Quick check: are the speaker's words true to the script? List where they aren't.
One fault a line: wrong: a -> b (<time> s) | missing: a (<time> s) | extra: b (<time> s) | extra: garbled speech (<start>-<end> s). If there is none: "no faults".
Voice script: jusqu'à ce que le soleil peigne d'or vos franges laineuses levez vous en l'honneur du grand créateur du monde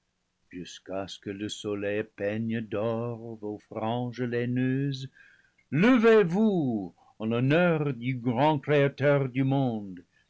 no faults